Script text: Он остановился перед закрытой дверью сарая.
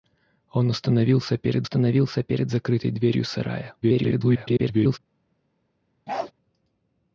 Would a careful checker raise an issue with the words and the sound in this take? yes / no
yes